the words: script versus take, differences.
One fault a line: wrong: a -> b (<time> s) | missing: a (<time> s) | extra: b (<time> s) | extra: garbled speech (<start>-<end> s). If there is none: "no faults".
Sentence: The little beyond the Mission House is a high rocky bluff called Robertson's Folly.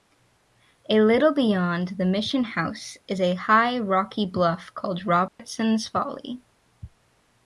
wrong: The -> A (0.9 s)